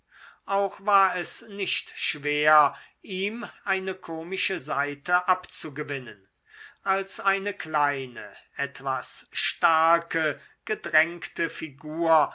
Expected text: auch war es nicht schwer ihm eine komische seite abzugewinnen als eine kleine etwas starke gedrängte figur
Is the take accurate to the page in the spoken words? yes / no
yes